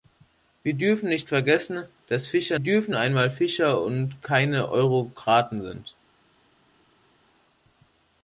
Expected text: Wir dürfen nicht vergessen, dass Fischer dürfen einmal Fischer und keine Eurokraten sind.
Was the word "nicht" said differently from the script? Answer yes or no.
no